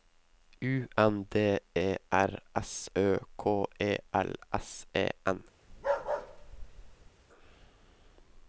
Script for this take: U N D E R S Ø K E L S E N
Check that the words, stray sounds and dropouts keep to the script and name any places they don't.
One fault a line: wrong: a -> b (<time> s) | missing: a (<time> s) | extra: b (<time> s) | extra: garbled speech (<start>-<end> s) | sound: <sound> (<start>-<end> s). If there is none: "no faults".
sound: bark (5.7-7.1 s)